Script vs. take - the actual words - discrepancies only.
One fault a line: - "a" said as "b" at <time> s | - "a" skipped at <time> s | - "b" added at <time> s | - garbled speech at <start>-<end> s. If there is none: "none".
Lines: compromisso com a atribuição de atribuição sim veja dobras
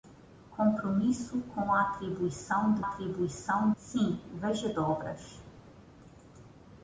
none